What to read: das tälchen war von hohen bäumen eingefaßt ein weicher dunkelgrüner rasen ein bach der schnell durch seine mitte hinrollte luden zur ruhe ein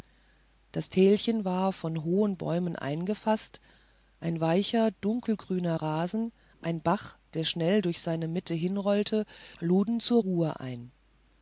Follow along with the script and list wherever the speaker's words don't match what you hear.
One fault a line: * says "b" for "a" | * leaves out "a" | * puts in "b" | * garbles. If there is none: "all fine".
all fine